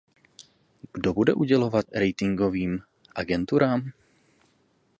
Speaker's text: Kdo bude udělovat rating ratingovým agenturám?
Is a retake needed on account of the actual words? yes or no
yes